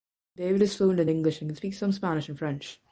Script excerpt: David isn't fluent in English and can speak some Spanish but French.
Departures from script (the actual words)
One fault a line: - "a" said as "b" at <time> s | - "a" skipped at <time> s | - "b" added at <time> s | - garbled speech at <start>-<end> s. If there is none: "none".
- "isn't" said as "is" at 0.6 s
- "but" said as "and" at 2.3 s